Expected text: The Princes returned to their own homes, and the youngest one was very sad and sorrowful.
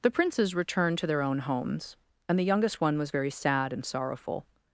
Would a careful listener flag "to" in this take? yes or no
no